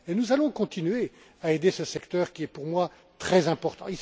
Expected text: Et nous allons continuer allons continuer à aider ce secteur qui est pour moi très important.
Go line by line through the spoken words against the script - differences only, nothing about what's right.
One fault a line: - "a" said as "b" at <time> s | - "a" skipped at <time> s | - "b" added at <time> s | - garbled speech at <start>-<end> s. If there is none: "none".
- "allons continuer" skipped at 1.1 s